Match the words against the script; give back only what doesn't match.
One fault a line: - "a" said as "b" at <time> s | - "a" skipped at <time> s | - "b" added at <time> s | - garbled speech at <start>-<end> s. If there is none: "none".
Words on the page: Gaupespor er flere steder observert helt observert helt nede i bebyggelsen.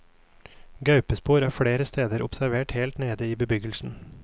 - "observert helt" skipped at 3.0 s